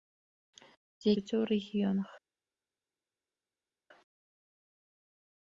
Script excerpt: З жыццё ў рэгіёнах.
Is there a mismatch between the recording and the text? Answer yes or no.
no